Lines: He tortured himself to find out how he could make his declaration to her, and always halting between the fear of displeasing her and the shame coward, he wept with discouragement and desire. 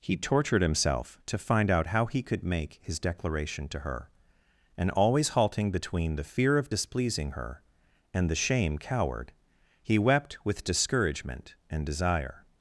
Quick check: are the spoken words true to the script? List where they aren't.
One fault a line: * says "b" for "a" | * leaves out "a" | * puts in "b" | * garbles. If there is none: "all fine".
all fine